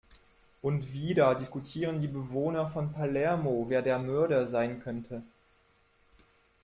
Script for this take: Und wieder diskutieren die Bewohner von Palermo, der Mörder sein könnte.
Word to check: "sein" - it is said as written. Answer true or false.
true